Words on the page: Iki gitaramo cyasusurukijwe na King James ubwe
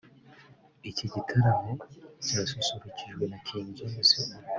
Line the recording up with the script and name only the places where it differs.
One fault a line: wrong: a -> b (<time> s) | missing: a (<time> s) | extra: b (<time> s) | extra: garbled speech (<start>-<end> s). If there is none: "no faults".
no faults